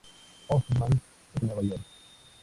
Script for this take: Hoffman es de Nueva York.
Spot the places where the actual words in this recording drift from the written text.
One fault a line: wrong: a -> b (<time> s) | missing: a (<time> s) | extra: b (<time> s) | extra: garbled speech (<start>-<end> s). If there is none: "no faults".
no faults